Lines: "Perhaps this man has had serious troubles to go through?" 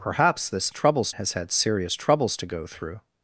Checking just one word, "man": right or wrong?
wrong